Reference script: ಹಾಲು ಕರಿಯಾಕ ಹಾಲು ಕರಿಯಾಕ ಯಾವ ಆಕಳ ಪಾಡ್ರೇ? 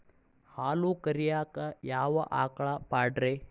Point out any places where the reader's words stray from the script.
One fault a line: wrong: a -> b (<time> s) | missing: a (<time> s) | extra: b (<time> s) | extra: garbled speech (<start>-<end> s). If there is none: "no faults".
missing: ಹಾಲು ಕರಿಯಾಕ (1.6 s)